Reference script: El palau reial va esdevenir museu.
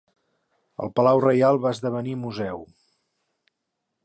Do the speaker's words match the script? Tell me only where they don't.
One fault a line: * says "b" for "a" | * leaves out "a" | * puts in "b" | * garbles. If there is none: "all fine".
all fine